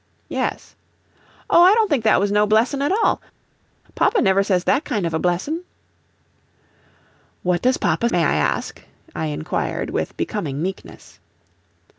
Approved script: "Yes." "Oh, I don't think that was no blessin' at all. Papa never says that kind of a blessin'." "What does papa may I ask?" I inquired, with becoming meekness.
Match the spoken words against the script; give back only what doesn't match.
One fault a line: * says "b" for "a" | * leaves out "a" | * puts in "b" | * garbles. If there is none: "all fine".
all fine